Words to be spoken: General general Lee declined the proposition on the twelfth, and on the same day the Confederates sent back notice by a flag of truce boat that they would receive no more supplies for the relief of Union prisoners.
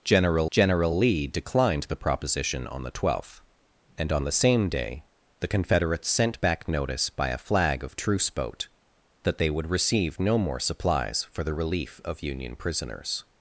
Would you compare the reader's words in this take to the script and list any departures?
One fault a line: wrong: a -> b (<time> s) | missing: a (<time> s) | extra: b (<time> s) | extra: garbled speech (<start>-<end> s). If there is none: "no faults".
no faults